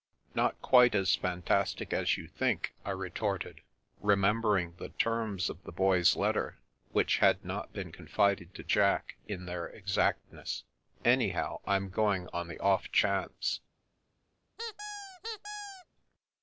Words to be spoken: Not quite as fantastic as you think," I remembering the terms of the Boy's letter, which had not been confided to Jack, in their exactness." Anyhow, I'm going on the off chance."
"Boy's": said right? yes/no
yes